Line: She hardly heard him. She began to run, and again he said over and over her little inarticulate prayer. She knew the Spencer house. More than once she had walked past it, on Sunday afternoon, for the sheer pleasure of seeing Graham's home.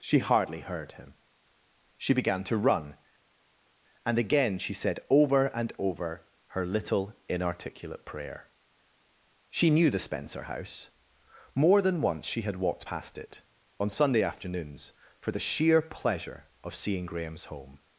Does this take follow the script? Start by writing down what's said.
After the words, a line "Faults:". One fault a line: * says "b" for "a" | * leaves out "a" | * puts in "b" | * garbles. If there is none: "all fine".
She hardly heard him. She began to run, and again she said over and over her little inarticulate prayer. She knew the Spencer house. More than once she had walked past it, on Sunday afternoons, for the sheer pleasure of seeing Graham's home.
Faults:
* says "she" for "he"
* says "afternoons" for "afternoon"